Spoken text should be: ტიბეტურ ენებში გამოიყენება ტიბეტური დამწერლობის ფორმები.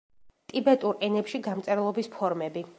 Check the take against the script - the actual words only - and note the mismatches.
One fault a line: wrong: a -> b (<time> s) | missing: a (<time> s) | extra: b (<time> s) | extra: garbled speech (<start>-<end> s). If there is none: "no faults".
missing: გამოიყენება ტიბეტური (1.4 s)